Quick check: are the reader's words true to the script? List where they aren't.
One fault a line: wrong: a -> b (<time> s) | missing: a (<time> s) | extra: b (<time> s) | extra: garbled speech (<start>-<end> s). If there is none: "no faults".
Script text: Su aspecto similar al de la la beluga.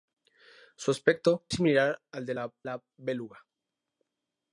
no faults